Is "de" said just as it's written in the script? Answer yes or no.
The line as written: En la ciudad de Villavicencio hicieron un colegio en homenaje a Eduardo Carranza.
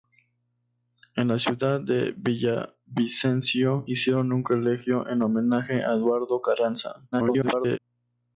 yes